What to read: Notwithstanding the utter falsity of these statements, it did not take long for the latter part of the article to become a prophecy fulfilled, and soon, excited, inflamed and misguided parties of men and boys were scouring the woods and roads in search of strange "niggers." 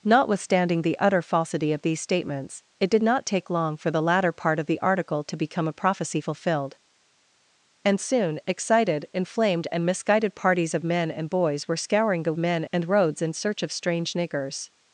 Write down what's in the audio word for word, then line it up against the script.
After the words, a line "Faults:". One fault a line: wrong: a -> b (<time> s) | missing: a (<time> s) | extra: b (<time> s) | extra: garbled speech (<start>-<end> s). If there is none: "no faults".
Notwithstanding the utter falsity of these statements, it did not take long for the latter part of the article to become a prophecy fulfilled, and soon, excited, inflamed and misguided parties of men and boys were scouring the men and roads in search of strange "niggers."
Faults:
wrong: woods -> men (12.4 s)